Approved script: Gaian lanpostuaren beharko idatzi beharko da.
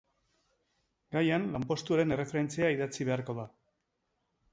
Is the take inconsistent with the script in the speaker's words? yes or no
yes